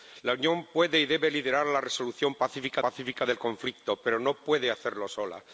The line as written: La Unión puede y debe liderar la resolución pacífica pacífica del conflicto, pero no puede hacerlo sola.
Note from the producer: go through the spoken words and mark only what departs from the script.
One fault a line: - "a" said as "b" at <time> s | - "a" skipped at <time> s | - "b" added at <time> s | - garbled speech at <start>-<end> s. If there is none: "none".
none